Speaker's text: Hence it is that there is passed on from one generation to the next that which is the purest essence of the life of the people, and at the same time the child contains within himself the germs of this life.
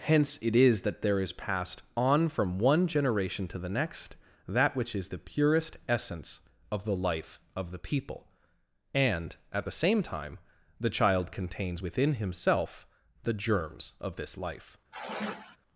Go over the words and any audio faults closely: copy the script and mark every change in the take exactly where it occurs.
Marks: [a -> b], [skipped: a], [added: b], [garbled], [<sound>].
Hence it is that there is passed on from one generation to the next that which is the purest essence of the life of the people, and at the same time the child contains within himself the germs of this life. [sigh]